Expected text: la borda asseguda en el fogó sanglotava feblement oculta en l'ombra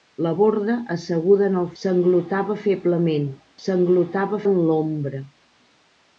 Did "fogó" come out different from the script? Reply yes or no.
yes